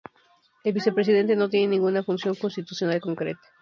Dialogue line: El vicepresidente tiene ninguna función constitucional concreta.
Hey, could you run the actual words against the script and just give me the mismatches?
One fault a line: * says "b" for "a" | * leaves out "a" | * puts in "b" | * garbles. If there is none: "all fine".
* puts in "no"